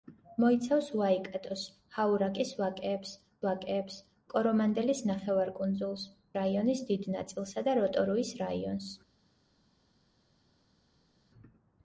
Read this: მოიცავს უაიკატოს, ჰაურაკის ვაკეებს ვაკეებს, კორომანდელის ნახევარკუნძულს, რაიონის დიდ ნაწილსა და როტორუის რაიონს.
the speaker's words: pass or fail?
pass